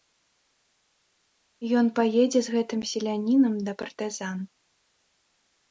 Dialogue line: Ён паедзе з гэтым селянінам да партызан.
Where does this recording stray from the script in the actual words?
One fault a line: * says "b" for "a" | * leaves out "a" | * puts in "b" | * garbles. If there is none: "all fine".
all fine